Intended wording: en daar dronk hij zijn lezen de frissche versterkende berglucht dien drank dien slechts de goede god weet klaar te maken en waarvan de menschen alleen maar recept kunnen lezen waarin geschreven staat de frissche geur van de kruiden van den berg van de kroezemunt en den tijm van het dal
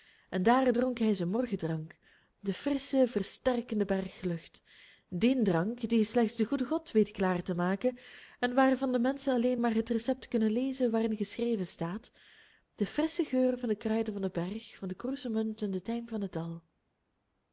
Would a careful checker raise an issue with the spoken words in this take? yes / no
yes